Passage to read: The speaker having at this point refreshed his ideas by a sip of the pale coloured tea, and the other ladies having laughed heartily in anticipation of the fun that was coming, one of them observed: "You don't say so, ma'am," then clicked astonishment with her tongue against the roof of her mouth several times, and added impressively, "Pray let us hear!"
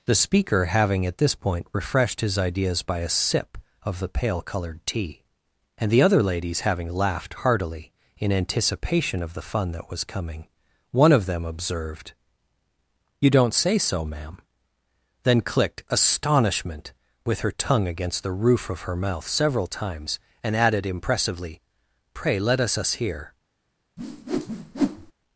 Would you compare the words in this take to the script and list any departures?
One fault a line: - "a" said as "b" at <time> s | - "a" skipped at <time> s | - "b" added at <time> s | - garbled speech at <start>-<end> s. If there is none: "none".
- "us" added at 22.8 s